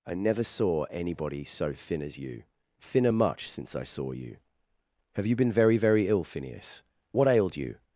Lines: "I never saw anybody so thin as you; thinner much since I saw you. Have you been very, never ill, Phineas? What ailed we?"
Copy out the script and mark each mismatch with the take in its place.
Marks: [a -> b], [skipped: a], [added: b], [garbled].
"I never saw anybody so thin as you; thinner much since I saw you. Have you been very, [never -> very] ill, Phineas? What ailed [we?" -> you]